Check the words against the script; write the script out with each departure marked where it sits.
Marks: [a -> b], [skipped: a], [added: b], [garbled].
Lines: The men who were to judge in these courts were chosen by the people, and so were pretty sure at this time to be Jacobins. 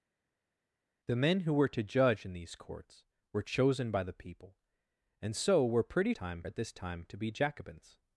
The men who were to judge in these courts were chosen by the people, and so were pretty [sure -> time] at this time to be Jacobins.